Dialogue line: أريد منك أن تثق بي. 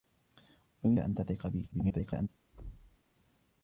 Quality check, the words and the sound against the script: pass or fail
fail